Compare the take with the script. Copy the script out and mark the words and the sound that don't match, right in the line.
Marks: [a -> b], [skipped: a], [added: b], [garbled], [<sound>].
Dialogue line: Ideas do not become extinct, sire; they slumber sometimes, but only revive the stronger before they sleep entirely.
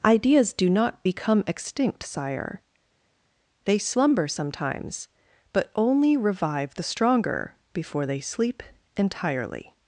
Ideas do not become extinct, sire; they slumber sometimes, but only revive the stronger before they sleep entirely.